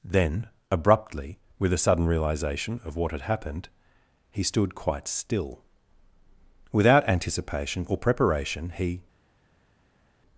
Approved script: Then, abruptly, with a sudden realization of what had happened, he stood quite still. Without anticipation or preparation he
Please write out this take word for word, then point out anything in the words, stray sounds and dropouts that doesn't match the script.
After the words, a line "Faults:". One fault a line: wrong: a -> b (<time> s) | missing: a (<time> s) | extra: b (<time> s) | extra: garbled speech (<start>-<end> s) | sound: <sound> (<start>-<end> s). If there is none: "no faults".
Then, abruptly, with a sudden realization of what had happened, he stood quite still. Without anticipation or preparation he
Faults:
no faults